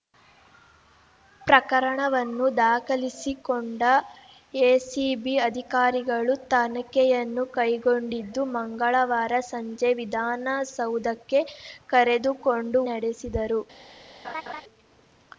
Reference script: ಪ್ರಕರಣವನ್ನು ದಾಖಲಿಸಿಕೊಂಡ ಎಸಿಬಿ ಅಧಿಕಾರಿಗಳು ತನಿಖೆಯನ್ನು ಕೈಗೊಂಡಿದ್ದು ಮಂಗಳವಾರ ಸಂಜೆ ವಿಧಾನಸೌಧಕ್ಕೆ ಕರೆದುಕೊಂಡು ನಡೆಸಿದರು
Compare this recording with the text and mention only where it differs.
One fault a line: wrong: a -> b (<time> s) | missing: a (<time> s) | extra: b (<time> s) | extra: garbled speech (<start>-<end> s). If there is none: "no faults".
no faults